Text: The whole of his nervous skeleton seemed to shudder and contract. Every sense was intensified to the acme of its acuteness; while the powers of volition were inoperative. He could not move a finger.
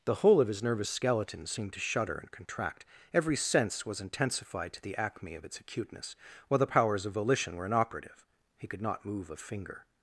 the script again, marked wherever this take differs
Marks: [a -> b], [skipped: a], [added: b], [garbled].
The whole of his nervous skeleton seemed to shudder and contract. Every sense was intensified to the acme of its acuteness; while the powers of volition were inoperative. He could not move a finger.